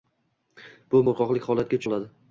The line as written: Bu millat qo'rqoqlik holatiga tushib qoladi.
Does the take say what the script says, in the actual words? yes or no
no